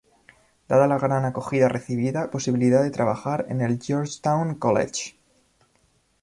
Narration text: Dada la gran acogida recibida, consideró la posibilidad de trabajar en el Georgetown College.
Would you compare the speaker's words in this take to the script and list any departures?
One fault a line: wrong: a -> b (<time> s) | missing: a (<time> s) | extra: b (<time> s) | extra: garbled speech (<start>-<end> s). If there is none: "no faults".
missing: consideró la (2.3 s)